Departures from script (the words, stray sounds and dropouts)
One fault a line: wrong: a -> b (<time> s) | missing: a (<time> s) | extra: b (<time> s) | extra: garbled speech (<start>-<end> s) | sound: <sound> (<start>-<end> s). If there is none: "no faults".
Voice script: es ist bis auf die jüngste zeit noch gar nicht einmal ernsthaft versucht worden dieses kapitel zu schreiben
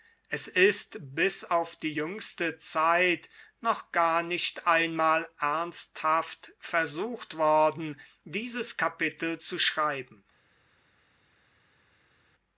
no faults